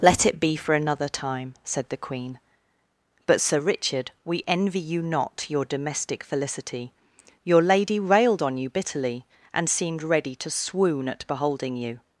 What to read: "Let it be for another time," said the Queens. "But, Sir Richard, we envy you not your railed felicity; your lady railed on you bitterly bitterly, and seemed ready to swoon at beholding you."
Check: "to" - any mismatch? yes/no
no